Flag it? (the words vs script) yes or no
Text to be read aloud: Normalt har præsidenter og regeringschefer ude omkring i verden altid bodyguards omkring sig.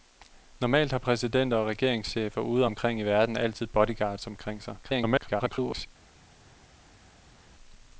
yes